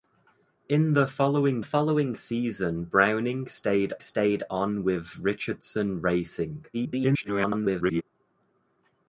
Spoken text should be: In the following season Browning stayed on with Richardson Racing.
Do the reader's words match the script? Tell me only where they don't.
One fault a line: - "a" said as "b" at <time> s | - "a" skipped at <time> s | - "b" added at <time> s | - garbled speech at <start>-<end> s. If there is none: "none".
- "following" added at 1.6 s
- "stayed" added at 4.0 s
- garbled speech at 6.7-8.0 s